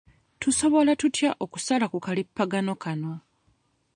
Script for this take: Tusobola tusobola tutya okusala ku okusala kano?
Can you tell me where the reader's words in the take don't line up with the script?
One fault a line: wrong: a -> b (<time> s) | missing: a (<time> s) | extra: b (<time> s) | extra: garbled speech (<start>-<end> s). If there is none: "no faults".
missing: tusobola (0.9 s)
wrong: okusala -> kalippagano (2.0 s)